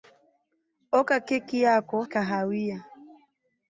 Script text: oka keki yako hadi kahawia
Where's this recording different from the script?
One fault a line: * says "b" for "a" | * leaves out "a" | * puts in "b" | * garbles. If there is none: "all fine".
* leaves out "hadi"